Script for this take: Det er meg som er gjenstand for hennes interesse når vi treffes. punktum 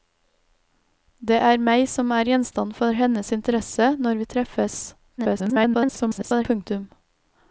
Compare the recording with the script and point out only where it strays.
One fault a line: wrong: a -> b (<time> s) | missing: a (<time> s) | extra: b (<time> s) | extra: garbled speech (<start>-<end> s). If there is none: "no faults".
extra: garbled speech (5.2-6.5 s)